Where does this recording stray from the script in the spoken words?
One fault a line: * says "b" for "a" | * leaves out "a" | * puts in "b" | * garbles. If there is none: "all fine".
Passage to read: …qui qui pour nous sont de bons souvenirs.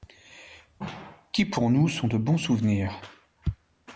* leaves out "qui"